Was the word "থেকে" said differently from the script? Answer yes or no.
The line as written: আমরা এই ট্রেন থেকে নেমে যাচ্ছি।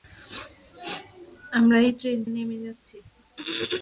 yes